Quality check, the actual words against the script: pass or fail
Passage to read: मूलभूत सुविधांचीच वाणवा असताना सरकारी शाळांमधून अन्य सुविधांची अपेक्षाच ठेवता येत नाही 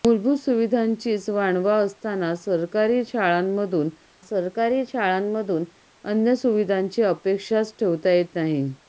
fail